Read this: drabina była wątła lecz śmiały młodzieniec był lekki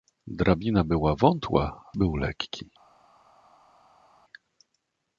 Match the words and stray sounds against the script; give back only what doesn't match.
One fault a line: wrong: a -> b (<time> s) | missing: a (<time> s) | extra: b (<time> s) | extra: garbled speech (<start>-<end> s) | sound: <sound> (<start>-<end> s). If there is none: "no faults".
missing: lecz śmiały młodzieniec (1.8 s)